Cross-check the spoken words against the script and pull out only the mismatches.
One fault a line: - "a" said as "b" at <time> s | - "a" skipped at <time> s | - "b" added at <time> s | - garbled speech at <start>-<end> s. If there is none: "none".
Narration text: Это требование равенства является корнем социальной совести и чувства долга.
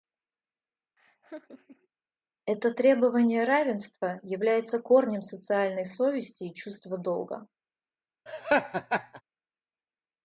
none